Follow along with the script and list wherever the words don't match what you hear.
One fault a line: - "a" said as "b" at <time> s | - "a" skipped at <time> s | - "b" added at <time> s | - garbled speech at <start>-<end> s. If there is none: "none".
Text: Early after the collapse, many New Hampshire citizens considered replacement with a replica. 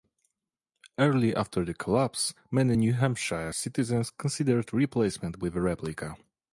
none